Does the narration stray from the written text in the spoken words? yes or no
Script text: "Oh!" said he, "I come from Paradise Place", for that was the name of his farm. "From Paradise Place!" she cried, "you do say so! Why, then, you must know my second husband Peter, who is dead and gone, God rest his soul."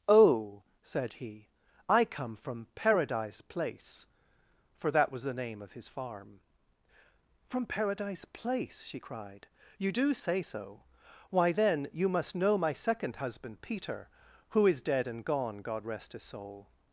no